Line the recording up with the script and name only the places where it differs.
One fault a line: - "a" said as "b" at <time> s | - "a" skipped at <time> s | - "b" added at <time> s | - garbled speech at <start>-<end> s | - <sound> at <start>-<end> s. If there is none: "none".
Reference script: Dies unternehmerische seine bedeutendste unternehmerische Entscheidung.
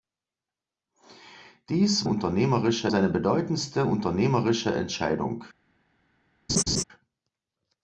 - laugh at 6.5-6.8 s